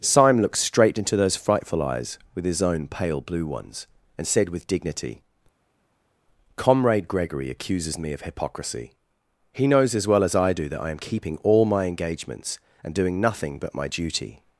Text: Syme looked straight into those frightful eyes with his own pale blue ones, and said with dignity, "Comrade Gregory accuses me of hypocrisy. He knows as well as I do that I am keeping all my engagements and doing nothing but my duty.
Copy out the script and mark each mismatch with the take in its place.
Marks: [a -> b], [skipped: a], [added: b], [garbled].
Syme looked straight into those frightful eyes with his own pale blue ones, and said with dignity, "Comrade Gregory accuses me of hypocrisy. He knows as well as I do that I am keeping all my engagements and doing nothing but my duty.